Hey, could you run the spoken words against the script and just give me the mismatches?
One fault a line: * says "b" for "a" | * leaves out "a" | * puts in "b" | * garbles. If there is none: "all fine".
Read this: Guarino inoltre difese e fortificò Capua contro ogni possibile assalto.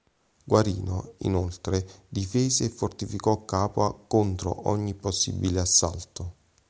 all fine